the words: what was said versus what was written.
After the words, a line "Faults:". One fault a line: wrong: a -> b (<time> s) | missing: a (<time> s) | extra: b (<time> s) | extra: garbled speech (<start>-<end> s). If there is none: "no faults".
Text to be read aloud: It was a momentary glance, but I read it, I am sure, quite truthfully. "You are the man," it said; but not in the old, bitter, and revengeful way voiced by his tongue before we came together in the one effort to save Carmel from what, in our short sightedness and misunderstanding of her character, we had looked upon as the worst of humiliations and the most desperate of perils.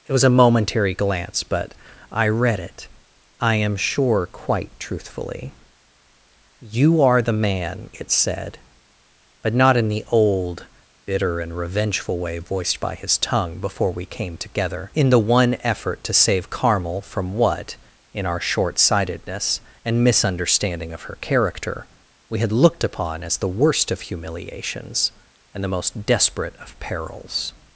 It was a momentary glance, but I read it, I am sure, quite truthfully. "You are the man," it said; but not in the old, bitter, and revengeful way voiced by his tongue before we came together in the one effort to save Carmel from what, in our short sightedness and misunderstanding of her character, we had looked upon as the worst of humiliations and the most desperate of perils.
Faults:
no faults